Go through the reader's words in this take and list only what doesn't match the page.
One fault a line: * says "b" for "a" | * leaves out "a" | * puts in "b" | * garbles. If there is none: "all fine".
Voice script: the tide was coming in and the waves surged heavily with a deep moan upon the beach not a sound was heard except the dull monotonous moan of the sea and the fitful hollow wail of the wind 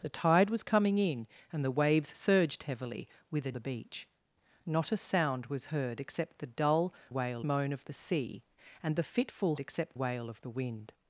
* leaves out "deep moan upon"
* says "wail" for "monotonous"
* says "except" for "hollow"